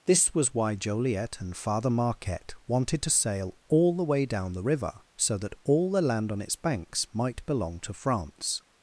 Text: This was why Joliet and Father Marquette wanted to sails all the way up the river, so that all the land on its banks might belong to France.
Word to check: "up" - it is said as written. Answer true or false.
false